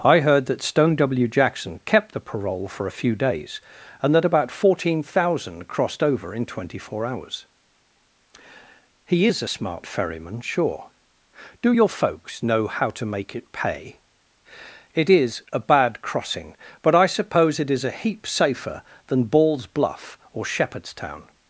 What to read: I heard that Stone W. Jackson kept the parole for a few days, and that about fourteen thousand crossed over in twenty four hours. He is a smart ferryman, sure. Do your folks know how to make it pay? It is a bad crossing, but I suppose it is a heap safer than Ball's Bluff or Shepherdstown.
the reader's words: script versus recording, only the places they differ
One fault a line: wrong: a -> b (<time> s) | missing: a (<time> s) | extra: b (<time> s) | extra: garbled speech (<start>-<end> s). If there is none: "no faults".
no faults